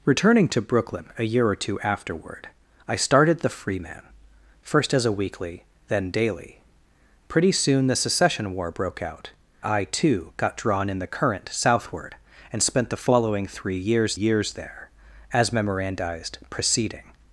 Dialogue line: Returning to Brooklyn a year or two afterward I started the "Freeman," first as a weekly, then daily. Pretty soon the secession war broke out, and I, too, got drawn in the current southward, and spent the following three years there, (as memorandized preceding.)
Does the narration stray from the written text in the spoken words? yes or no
yes